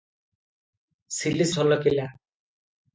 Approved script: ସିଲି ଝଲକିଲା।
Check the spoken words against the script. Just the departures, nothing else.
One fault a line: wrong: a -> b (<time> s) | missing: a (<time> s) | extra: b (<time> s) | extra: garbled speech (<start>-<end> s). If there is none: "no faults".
no faults